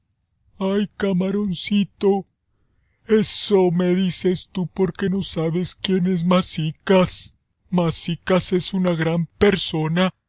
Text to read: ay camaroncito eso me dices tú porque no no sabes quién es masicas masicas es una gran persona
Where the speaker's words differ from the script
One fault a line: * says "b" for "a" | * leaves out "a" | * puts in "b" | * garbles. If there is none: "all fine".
* leaves out "no"